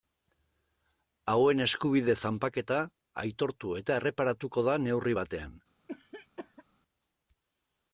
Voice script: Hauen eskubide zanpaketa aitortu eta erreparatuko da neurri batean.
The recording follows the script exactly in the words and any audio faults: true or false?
false